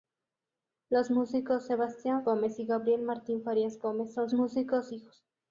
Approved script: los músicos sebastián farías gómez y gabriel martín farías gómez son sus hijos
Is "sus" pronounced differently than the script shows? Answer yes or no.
yes